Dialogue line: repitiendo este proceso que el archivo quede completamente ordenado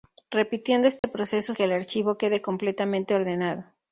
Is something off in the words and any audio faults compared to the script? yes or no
yes